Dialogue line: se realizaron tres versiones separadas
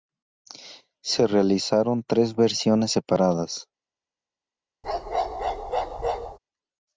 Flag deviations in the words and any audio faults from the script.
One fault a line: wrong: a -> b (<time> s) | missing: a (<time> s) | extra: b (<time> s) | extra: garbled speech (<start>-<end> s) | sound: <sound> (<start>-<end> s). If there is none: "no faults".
sound: bark (4.8-6.4 s)